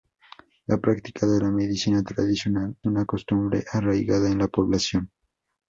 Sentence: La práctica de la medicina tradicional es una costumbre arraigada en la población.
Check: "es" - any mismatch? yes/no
yes